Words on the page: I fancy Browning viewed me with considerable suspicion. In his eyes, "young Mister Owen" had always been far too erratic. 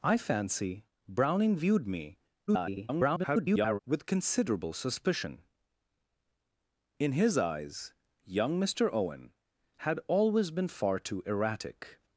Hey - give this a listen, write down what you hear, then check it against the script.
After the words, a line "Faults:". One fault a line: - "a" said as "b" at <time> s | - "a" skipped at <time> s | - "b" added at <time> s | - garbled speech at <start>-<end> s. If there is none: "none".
I fancy Browning viewed me [garbled] with considerable suspicion. In his eyes, "young Mister Owen" had always been far too erratic.
Faults:
- garbled speech at 2.5-3.8 s